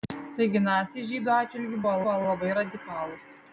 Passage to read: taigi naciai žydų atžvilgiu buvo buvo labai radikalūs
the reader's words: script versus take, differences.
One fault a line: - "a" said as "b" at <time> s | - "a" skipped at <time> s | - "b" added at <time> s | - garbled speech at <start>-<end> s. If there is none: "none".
none